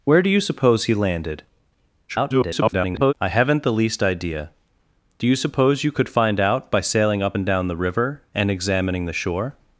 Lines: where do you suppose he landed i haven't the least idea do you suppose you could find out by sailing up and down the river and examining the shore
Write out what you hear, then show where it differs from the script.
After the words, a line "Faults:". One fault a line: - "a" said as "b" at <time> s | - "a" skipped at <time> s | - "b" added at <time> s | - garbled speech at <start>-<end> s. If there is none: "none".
where do you suppose he landed [garbled] i haven't the least idea do you suppose you could find out by sailing up and down the river and examining the shore
Faults:
- garbled speech at 2.1-3.1 s